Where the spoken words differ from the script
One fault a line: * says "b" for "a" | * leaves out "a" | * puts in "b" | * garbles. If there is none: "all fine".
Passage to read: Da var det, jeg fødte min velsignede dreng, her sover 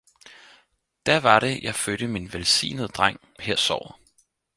all fine